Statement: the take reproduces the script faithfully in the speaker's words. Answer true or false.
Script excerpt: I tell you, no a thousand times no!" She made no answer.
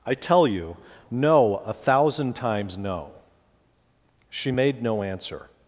true